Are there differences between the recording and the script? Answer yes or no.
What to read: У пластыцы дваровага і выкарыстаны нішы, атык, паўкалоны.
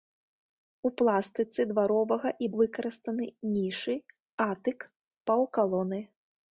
no